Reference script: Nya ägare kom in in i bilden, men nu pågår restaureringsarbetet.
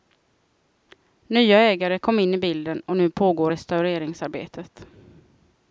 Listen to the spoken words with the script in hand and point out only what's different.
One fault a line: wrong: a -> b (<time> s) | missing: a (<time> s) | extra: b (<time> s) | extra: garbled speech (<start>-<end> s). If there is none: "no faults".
missing: in (2.3 s)
wrong: men -> och (2.9 s)